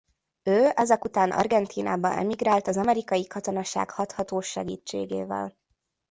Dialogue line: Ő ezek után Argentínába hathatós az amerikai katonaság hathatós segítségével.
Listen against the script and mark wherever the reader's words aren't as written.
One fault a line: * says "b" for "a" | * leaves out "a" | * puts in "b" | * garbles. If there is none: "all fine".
* says "emigrált" for "hathatós"